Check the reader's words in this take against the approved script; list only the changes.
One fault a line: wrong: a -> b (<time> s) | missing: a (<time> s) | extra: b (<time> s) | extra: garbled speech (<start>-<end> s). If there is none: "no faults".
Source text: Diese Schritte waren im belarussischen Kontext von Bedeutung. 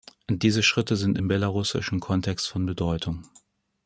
wrong: waren -> sind (0.9 s)